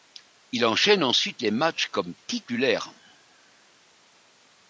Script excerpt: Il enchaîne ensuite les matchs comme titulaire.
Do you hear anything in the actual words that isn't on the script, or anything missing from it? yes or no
no